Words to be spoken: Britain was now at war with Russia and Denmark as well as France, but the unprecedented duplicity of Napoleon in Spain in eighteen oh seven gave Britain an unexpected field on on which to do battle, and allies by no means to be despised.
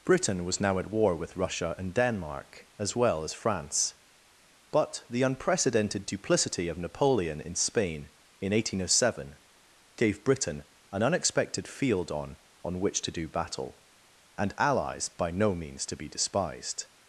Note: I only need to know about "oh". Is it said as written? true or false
true